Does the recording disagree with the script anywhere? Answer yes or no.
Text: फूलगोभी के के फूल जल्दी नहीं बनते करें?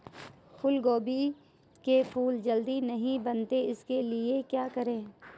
yes